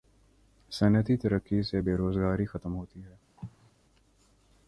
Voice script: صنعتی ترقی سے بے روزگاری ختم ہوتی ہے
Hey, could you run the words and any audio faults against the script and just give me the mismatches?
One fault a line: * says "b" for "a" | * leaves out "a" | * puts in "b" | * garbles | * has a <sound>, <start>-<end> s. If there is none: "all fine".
* has a cough, 3.4-3.7 s